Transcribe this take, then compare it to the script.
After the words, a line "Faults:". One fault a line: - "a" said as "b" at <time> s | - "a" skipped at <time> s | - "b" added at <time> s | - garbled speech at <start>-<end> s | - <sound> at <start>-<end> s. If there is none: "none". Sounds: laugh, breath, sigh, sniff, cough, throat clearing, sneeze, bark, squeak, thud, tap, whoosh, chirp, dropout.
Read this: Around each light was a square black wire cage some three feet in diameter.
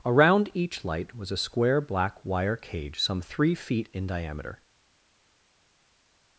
Around each light was a square black wire cage some three feet in diameter.
Faults:
none